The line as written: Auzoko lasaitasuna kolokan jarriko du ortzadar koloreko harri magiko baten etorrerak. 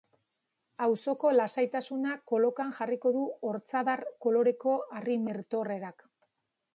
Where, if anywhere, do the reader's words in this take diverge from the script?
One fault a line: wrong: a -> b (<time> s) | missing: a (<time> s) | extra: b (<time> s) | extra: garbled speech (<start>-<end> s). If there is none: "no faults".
missing: magiko baten (5.2 s)